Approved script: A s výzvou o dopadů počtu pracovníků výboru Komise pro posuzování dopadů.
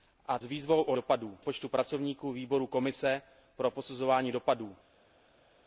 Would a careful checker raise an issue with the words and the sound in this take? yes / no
no